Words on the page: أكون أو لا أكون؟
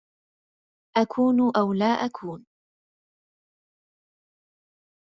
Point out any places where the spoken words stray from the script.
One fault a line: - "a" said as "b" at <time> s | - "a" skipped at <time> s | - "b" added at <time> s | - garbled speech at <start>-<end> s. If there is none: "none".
none